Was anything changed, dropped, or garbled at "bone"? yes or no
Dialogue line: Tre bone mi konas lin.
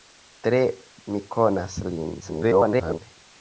yes